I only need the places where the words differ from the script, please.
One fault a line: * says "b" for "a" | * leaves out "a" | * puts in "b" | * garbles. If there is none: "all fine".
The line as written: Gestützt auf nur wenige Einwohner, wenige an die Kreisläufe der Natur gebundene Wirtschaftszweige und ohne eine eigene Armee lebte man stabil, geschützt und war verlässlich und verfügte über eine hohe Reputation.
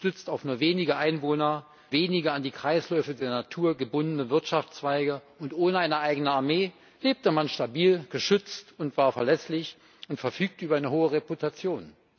all fine